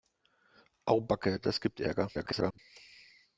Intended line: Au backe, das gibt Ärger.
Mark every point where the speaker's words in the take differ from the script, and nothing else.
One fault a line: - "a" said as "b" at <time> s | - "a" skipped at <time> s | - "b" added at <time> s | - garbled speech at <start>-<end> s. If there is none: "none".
- garbled speech at 2.1-2.6 s